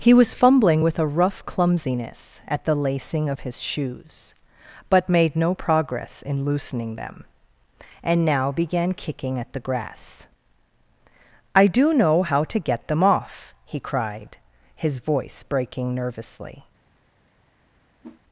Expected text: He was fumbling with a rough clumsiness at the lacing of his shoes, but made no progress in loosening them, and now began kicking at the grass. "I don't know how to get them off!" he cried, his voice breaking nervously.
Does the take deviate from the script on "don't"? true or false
true